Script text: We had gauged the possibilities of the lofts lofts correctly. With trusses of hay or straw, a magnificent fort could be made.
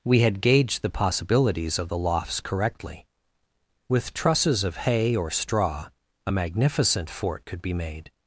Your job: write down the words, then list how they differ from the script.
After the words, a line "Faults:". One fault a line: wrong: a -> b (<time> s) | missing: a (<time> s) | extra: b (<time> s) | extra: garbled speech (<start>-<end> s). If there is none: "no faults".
We had gauged the possibilities of the lofts correctly. With trusses of hay or straw, a magnificent fort could be made.
Faults:
missing: lofts (2.4 s)